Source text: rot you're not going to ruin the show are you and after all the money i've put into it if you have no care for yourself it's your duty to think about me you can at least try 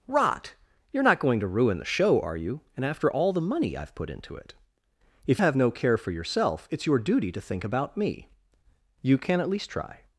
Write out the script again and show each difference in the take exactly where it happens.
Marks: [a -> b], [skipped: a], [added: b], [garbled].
rot you're not going to ruin the show are you and after all the money i've put into it if [skipped: you] have no care for yourself it's your duty to think about me you can at least try